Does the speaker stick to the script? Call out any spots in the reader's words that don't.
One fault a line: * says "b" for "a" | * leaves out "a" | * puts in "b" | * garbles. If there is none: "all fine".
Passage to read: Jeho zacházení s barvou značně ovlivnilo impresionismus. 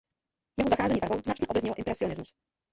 all fine